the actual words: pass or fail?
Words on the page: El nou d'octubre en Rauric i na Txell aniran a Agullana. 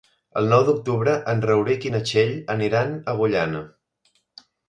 pass